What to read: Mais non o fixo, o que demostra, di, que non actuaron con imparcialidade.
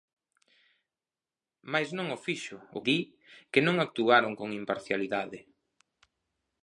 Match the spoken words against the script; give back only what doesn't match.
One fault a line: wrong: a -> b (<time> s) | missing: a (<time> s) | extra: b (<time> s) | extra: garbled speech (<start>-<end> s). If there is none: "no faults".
missing: que demostra (2.8 s)